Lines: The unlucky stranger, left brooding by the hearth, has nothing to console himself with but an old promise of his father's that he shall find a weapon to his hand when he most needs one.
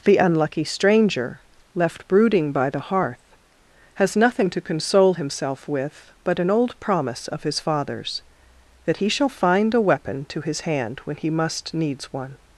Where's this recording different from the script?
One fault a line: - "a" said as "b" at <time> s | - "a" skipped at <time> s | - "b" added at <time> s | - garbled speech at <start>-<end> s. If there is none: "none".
- "most" said as "must" at 11.3 s